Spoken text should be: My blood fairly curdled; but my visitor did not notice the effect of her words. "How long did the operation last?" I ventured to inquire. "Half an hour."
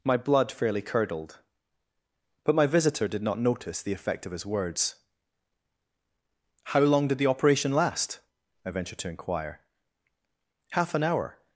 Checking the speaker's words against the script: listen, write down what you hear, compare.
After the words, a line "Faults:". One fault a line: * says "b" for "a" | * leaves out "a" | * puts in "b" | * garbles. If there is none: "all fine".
My blood fairly curdled; but my visitor did not notice the effect of his words. "How long did the operation last?" I ventured to inquire. "Half an hour."
Faults:
* says "his" for "her"